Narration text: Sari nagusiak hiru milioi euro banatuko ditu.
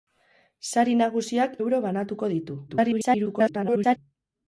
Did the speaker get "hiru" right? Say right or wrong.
wrong